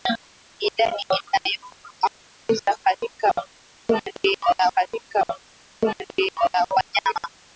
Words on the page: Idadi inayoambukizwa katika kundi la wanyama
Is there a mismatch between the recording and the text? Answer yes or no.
yes